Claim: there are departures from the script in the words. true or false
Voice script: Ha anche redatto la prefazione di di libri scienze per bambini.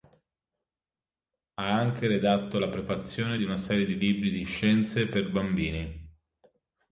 true